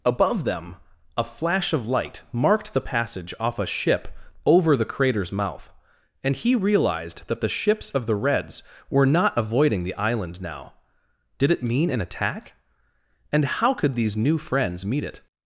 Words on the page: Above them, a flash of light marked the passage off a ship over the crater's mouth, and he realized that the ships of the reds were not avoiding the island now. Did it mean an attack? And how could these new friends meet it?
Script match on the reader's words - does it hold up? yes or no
yes